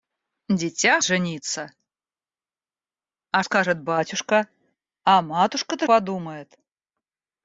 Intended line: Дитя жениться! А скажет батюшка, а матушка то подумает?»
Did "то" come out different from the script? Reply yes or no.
no